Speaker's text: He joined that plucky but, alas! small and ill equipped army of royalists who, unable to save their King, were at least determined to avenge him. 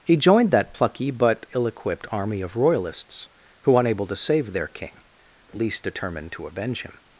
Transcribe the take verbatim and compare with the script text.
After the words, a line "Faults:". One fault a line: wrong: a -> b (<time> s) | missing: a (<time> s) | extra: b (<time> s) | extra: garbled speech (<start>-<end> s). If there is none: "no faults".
He joined that plucky but, ill equipped army of royalists who, unable to save their King, at least determined to avenge him.
Faults:
missing: alas small and (1.4 s)
missing: were (5.0 s)